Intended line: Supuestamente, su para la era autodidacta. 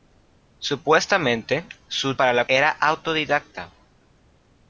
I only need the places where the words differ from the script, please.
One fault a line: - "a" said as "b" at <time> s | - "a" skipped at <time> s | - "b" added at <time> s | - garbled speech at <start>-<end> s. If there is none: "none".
none